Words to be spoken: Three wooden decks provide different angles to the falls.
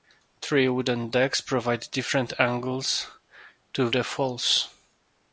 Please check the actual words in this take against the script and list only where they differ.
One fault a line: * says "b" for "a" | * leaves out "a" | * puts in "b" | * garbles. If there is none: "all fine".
all fine